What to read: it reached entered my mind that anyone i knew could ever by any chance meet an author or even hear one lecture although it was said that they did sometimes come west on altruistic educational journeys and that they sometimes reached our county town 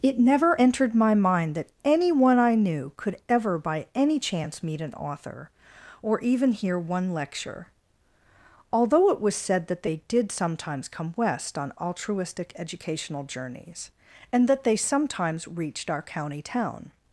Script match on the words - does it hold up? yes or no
no